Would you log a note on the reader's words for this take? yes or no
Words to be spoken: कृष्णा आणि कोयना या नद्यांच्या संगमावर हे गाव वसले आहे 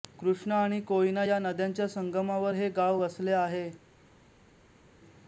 no